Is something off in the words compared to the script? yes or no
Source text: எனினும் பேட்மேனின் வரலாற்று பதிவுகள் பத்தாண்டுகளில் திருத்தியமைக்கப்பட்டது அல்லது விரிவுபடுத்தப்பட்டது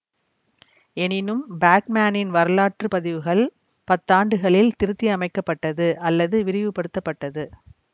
no